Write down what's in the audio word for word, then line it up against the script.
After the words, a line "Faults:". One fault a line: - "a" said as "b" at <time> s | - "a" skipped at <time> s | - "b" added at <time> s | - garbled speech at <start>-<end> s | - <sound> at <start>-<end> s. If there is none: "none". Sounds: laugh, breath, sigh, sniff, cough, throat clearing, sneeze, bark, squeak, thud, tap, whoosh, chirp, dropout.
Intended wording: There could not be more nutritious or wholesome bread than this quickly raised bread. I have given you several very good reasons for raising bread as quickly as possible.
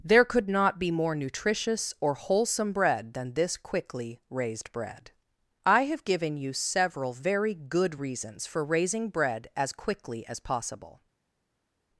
There could not be more nutritious or wholesome bread than this quickly raised bread. I have given you several very good reasons for raising bread as quickly as possible.
Faults:
none